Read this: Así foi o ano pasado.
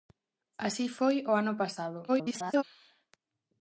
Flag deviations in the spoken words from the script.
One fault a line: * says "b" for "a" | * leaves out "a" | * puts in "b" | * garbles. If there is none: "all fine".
* garbles